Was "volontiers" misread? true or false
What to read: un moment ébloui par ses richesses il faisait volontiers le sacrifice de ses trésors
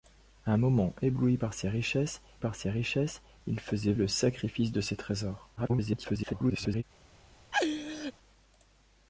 true